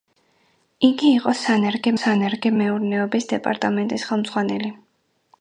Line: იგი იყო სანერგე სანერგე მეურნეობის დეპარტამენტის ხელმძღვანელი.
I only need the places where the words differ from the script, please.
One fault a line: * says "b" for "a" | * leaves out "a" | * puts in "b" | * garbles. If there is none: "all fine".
all fine